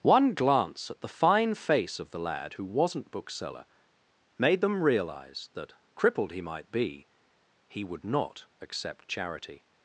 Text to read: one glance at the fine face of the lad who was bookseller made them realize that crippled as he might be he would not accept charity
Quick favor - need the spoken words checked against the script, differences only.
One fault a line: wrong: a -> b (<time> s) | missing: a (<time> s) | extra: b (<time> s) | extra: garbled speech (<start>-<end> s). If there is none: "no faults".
wrong: was -> wasn't (2.6 s)
missing: as (6.3 s)